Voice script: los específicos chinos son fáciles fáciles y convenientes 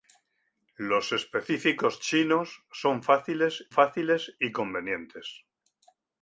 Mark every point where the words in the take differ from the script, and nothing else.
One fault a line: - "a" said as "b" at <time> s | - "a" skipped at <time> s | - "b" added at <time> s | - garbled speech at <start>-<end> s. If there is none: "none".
none